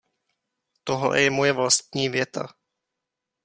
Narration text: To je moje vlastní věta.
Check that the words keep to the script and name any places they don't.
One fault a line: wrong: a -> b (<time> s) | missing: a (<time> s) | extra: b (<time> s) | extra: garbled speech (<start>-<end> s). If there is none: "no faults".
wrong: To -> Tohle (0.8 s)